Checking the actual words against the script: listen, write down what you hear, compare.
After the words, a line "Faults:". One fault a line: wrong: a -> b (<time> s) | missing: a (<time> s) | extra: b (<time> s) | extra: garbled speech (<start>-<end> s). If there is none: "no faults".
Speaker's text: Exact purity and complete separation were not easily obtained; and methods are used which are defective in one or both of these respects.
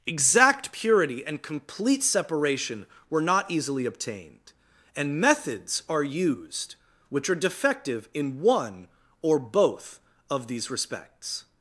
Exact purity and complete separation were not easily obtained; and methods are used which are defective in one or both of these respects.
Faults:
no faults